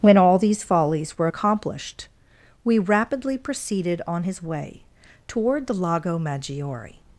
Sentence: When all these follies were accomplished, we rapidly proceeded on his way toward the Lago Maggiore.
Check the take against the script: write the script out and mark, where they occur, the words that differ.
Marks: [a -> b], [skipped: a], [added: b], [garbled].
When all these follies were accomplished, we rapidly proceeded on his way toward the Lago Maggiore.